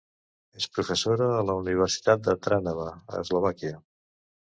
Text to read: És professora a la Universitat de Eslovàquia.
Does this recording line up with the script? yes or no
no